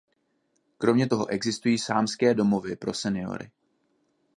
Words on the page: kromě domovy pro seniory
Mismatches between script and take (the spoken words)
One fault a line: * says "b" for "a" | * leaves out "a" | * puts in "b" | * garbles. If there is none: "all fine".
* puts in "toho existují sámské"